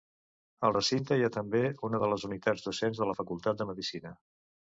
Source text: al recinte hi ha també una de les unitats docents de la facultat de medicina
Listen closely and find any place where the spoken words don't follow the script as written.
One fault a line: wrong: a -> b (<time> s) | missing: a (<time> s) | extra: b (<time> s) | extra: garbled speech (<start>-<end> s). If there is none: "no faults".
no faults